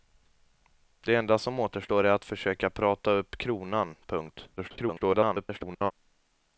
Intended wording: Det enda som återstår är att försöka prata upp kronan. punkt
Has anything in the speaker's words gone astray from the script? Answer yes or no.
yes